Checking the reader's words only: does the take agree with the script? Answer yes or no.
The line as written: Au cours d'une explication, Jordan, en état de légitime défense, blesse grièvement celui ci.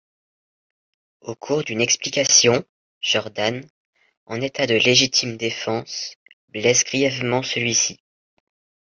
yes